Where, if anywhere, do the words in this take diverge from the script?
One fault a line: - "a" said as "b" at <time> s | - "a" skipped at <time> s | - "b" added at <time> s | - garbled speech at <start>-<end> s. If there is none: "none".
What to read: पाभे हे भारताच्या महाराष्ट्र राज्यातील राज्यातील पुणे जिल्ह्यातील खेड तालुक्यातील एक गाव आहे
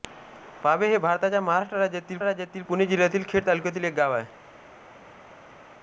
none